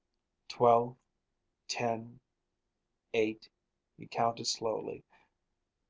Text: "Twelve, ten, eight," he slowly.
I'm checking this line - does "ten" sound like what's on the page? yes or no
yes